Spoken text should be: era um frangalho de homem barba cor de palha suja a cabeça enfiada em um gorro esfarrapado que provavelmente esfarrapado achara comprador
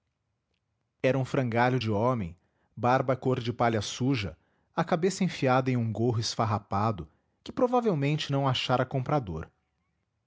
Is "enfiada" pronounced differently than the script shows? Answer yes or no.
no